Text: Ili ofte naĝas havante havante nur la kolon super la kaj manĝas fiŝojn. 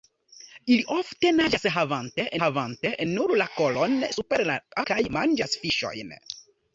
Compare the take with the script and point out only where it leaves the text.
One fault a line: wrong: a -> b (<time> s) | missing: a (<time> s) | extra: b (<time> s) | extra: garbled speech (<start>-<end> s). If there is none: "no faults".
no faults